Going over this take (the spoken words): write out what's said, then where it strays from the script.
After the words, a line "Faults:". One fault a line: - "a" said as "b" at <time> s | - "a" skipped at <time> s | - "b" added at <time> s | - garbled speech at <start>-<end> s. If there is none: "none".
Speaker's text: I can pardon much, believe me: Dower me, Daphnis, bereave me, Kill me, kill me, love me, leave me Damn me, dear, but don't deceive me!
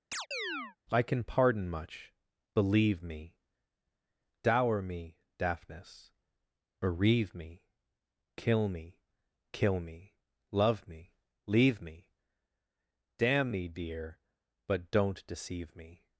I can pardon much, believe me: Dower me, Daphnis, bereave me, Kill me, kill me, love me, leave me Damn me, dear, but don't deceive me!
Faults:
none